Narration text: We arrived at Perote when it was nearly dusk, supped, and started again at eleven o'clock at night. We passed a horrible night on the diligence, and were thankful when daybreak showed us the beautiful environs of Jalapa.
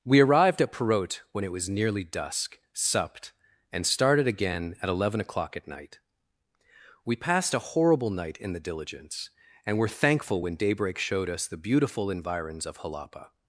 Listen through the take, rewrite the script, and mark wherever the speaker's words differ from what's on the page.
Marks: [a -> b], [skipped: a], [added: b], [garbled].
We arrived at Perote when it was nearly dusk, supped, and started again at eleven o'clock at night. We passed a horrible night [on -> in] the diligence, and were thankful when daybreak showed us the beautiful environs of Jalapa.